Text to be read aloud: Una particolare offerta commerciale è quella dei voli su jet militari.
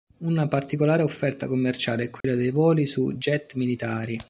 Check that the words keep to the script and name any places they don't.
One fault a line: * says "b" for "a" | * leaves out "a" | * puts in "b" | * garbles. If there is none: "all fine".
all fine